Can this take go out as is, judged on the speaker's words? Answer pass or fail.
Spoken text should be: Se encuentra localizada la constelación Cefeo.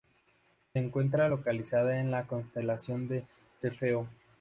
fail